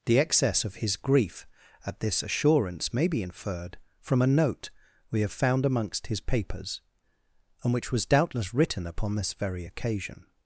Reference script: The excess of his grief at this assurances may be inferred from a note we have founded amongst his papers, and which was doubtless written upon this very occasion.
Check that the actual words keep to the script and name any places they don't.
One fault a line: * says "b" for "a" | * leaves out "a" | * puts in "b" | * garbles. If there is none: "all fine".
* says "assurance" for "assurances"
* says "found" for "founded"